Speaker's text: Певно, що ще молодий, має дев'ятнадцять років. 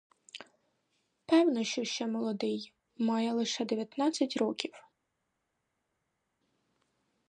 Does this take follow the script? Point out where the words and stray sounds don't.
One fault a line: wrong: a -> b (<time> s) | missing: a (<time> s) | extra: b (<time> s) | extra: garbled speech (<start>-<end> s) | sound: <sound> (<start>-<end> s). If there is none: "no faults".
extra: лише (3.3 s)